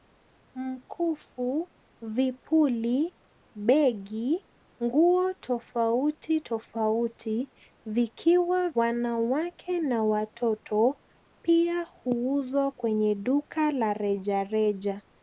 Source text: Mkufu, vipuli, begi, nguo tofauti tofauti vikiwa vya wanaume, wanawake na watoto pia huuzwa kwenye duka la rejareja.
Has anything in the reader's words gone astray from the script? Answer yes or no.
yes